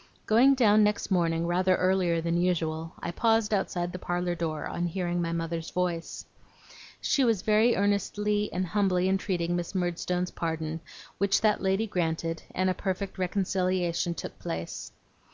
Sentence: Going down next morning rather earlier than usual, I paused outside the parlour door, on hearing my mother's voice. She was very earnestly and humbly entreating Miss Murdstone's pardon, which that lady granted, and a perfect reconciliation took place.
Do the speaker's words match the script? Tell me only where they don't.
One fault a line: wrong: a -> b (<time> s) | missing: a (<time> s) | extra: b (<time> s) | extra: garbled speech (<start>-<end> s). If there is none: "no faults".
no faults